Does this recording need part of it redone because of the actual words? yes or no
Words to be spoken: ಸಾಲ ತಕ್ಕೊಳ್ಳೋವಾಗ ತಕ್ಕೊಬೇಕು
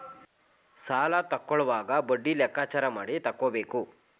yes